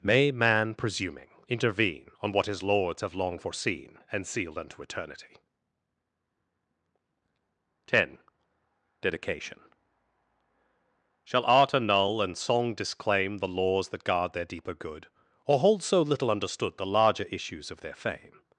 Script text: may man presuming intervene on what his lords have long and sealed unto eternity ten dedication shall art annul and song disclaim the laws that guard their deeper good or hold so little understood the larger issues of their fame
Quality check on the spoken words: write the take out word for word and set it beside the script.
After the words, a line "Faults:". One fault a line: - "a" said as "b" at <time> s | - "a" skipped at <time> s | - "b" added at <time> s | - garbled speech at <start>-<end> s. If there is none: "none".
may man presuming intervene on what his lords have long foreseen and sealed unto eternity ten dedication shall art annul and song disclaim the laws that guard their deeper good or hold so little understood the larger issues of their fame
Faults:
- "foreseen" added at 3.4 s